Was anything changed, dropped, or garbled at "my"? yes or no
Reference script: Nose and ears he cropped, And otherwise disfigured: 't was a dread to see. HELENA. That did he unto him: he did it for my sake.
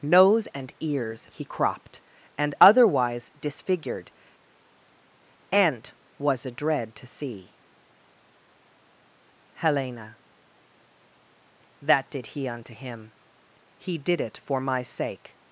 no